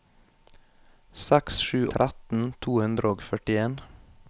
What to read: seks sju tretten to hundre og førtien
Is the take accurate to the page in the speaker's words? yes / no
yes